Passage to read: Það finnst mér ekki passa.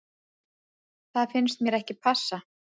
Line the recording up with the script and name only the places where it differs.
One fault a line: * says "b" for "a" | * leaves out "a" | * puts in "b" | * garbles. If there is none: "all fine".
all fine